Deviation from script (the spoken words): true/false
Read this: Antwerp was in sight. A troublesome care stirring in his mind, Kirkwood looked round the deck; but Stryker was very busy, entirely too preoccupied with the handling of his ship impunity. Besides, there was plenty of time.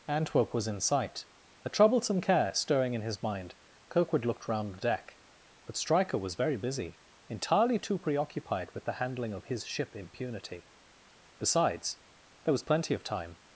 false